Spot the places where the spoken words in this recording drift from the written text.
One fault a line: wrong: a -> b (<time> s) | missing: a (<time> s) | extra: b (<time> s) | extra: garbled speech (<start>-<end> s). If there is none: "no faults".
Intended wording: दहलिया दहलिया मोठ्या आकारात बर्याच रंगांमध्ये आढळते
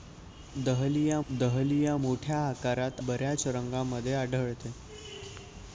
no faults